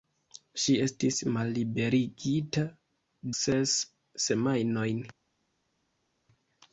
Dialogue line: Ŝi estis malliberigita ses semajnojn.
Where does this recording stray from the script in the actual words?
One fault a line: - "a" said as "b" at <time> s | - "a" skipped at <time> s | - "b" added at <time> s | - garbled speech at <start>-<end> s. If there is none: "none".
none